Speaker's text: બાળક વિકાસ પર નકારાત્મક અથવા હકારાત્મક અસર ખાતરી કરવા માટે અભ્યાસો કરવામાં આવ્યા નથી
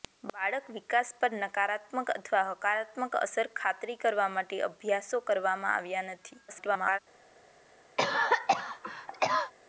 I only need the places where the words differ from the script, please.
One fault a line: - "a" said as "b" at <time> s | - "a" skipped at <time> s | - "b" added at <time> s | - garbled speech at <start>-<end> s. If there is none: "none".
- garbled speech at 6.5-7.0 s